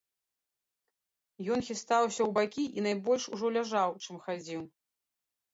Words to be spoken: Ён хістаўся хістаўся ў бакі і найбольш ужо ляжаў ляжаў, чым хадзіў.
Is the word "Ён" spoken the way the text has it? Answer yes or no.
yes